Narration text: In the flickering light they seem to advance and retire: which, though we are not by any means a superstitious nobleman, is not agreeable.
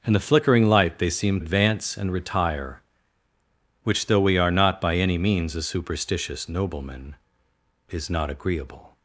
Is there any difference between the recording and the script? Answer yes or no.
yes